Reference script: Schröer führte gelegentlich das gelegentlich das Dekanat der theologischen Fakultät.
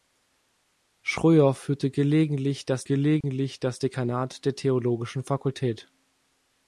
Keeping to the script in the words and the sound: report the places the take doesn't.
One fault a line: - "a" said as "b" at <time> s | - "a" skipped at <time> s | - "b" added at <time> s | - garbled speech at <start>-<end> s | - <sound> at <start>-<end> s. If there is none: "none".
- dropout at 3.2-3.2 s